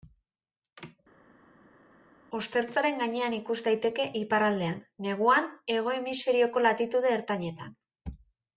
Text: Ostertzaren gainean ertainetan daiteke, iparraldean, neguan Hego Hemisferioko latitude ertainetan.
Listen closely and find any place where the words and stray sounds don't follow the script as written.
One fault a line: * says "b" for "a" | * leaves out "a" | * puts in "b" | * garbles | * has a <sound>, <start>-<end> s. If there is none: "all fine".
* says "ikus" for "ertainetan"